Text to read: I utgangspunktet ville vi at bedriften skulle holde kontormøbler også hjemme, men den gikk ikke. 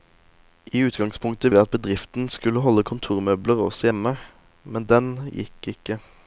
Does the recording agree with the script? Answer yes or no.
no